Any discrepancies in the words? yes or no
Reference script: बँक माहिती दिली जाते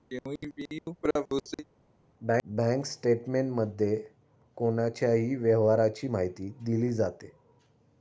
yes